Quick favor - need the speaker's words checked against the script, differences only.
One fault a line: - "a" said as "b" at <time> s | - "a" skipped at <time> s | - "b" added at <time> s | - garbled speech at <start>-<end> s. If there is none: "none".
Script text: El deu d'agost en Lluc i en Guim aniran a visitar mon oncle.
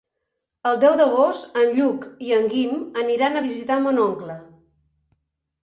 none